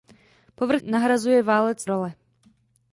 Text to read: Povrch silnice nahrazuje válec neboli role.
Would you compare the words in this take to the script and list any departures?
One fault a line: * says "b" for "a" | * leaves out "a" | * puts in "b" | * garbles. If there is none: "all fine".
* leaves out "silnice"
* leaves out "neboli"